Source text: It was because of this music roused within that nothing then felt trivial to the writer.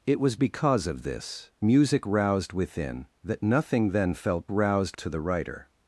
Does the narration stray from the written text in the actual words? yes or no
yes